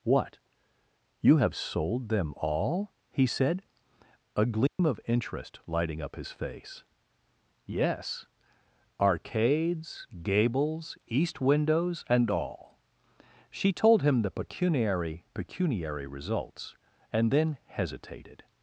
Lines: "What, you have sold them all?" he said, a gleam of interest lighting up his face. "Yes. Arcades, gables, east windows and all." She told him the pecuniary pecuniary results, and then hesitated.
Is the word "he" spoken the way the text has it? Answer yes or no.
yes